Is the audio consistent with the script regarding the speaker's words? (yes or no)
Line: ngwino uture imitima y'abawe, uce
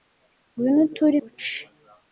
no